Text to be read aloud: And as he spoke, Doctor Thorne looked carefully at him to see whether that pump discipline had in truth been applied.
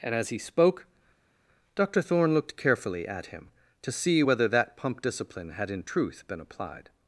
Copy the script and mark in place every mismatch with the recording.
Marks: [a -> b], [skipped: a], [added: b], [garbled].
And as he spoke, Doctor Thorne looked carefully at him to see whether that pump discipline had in truth been applied.